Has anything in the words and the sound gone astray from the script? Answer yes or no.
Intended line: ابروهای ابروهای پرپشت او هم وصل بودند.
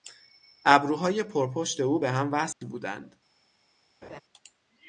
yes